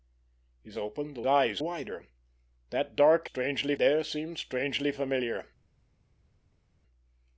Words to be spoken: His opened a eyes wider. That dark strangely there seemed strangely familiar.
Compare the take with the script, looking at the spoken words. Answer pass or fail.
pass